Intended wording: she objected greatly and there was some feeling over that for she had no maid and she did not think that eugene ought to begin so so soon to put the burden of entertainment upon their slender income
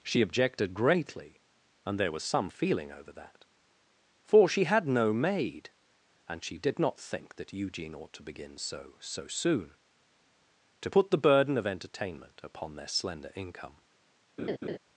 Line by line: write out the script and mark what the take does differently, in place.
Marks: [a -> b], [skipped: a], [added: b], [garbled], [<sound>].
she objected greatly and there was some feeling over that for she had no maid and she did not think that eugene ought to begin so so soon to put the burden of entertainment upon their slender income [laugh]